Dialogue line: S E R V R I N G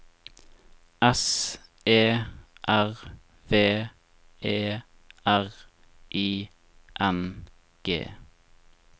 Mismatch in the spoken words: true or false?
true